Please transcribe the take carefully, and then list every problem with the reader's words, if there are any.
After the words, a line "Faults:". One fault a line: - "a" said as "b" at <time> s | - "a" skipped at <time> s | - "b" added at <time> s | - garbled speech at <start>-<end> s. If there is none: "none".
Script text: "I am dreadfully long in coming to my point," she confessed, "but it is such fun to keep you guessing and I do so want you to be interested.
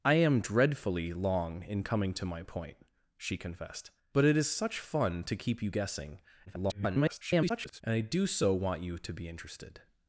"I am dreadfully long in coming to my point," she confessed, "but it is such fun to keep you guessing [garbled] and I do so want you to be interested.
Faults:
- garbled speech at 6.5-7.8 s